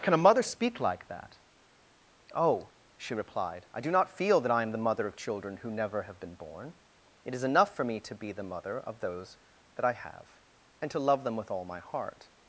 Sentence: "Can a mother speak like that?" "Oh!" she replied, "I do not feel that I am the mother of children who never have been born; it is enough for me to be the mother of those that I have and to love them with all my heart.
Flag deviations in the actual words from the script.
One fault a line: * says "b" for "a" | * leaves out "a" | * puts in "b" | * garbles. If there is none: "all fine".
all fine